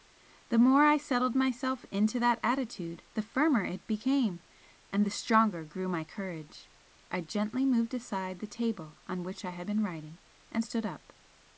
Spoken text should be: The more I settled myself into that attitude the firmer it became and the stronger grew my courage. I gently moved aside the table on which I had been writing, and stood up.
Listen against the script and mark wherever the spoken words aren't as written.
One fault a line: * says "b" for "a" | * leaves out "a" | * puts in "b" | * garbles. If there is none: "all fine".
all fine